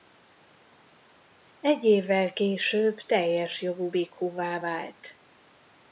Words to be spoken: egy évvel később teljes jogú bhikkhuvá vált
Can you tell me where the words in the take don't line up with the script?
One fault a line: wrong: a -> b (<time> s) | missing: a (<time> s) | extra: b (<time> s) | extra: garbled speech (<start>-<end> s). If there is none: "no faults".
no faults